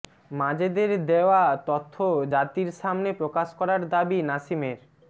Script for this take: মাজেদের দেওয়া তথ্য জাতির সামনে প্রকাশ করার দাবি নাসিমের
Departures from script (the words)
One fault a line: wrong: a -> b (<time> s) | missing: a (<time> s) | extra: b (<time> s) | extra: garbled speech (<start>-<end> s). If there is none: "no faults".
no faults